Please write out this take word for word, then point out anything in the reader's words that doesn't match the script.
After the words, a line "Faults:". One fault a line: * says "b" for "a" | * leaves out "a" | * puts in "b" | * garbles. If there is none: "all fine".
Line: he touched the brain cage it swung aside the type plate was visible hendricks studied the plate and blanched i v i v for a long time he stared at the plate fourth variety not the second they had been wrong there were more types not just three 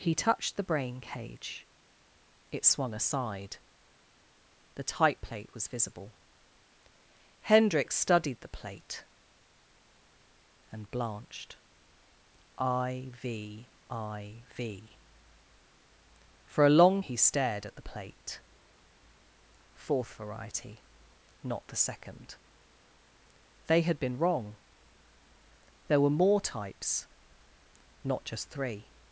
he touched the brain cage it swung aside the type plate was visible hendricks studied the plate and blanched i v i v for a long he stared at the plate fourth variety not the second they had been wrong there were more types not just three
Faults:
* leaves out "time"